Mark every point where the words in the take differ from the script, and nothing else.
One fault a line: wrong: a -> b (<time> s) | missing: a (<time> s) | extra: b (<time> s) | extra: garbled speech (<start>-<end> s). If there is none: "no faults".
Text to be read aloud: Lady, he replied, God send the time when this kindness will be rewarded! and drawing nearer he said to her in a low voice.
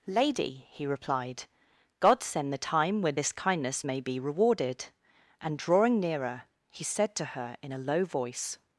wrong: will -> may (3.8 s)